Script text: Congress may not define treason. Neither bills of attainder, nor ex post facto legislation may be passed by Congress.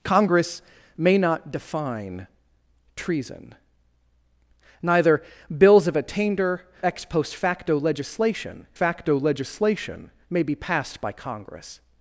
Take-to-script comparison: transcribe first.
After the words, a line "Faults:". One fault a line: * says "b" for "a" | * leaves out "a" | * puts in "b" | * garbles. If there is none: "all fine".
Congress may not define treason. Neither bills of attainder, ex post facto legislation facto legislation may be passed by Congress.
Faults:
* leaves out "nor"
* puts in "facto legislation"